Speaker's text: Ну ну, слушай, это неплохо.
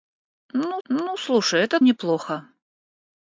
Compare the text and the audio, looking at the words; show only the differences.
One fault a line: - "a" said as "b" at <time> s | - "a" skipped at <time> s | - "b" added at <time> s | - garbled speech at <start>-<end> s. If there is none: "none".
none